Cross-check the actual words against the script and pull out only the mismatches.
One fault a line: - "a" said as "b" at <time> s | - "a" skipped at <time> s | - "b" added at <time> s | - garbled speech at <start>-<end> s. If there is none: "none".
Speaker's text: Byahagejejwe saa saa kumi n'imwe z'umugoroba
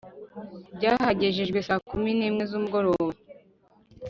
- "saa" skipped at 1.8 s